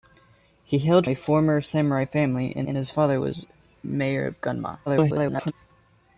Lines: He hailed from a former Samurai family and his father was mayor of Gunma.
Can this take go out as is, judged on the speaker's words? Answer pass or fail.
fail